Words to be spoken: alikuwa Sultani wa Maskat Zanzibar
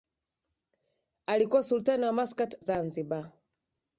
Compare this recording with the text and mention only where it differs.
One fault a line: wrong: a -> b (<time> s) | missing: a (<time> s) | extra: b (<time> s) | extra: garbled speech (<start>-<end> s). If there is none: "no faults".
no faults